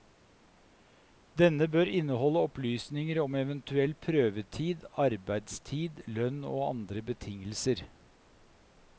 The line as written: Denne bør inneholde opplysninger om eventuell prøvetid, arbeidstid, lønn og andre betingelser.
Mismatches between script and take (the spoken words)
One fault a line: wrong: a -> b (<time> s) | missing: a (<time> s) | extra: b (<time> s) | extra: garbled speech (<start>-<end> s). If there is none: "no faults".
no faults